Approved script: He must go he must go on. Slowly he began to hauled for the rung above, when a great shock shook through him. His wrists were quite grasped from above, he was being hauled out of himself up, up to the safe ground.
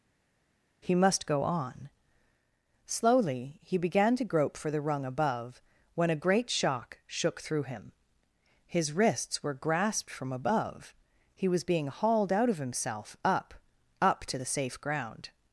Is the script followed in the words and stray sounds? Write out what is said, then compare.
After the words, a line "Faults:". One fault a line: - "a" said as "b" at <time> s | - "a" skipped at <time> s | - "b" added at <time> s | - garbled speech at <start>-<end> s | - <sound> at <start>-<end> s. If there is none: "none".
He must go on. Slowly he began to grope for the rung above, when a great shock shook through him. His wrists were grasped from above, he was being hauled out of himself up, up to the safe ground.
Faults:
- "he must go" skipped at 1.4 s
- "hauled" said as "grope" at 4.2 s
- "quite" skipped at 9.5 s